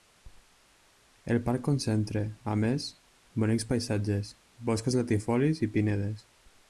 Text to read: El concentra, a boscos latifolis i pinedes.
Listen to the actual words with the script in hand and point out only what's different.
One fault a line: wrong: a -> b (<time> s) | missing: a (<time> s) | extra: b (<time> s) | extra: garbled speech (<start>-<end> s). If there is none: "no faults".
extra: parc (1.5 s)
extra: més bonics paisatges (2.6 s)